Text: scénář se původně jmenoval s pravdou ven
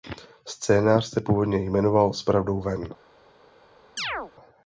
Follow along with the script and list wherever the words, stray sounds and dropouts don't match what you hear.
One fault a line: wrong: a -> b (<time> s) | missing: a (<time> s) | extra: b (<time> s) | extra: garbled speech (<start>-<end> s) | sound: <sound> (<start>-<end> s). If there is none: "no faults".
sound: chirp (4.0-4.3 s)